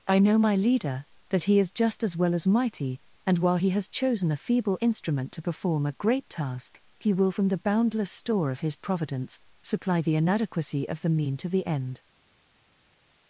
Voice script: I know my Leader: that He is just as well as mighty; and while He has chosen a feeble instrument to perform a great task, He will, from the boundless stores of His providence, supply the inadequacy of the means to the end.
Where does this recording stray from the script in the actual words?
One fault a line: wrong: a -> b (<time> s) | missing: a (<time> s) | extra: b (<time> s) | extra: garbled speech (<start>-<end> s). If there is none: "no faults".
wrong: stores -> store (8.1 s)
wrong: means -> mean (11.1 s)